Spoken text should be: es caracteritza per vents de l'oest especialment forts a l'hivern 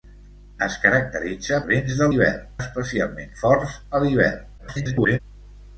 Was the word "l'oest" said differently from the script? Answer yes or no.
yes